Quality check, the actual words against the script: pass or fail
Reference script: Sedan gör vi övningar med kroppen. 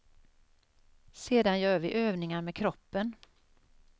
pass